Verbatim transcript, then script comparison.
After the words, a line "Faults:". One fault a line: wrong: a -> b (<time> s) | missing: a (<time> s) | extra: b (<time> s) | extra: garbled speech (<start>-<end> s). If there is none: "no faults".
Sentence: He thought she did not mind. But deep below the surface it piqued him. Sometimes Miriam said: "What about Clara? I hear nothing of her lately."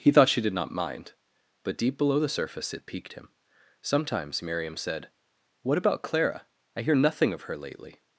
He thought she did not mind. But deep below the surface it piqued him. Sometimes Miriam said: "What about Clara? I hear nothing of her lately."
Faults:
no faults